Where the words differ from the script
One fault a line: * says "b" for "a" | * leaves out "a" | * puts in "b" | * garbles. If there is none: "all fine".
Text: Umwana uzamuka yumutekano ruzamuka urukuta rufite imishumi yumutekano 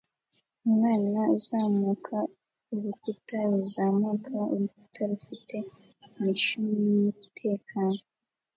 * says "urukuta" for "yumutekano"